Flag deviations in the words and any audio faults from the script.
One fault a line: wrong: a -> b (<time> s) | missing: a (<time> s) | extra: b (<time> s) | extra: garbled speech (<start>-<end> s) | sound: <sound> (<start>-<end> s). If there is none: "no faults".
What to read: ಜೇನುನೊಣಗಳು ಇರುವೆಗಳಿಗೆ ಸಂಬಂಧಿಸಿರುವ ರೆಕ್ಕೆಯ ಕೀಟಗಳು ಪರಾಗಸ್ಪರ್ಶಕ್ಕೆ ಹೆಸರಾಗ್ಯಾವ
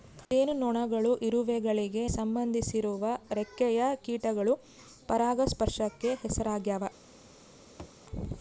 sound: thud (7.8-8.0 s)